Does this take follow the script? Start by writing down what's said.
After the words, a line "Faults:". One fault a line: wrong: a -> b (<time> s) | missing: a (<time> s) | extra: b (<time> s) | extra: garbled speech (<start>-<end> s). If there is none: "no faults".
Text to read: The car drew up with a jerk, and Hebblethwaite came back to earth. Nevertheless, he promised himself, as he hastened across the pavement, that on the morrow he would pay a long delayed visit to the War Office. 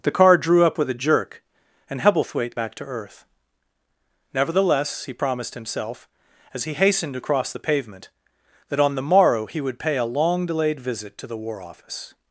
The car drew up with a jerk, and Hebblethwaite back to earth. Nevertheless, he promised himself, as he hastened across the pavement, that on the morrow he would pay a long delayed visit to the War Office.
Faults:
missing: came (2.5 s)